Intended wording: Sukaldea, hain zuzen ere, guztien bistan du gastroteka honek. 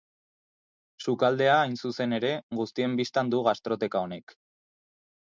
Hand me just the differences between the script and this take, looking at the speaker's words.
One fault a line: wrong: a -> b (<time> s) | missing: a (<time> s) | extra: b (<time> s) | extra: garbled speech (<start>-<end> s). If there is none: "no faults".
no faults